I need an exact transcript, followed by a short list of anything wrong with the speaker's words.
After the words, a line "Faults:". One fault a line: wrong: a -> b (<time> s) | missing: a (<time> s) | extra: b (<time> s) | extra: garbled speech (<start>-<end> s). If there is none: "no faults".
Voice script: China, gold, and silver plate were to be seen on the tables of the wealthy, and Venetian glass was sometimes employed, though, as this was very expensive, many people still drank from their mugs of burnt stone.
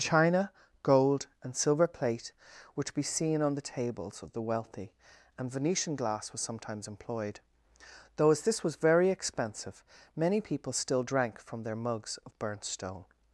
China, gold, and silver plate were to be seen on the tables of the wealthy, and Venetian glass was sometimes employed, though, as this was very expensive, many people still drank from their mugs of burnt stone.
Faults:
no faults